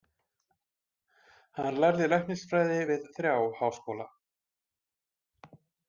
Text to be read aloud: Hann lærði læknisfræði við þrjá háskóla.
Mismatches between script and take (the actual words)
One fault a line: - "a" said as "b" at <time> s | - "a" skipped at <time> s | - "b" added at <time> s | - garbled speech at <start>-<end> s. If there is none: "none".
none